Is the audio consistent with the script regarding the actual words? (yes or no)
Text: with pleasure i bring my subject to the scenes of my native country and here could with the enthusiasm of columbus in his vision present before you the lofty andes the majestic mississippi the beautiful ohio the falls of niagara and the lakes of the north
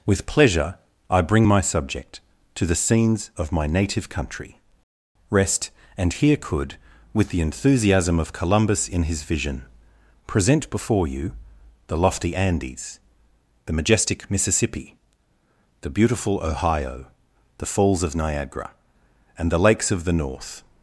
no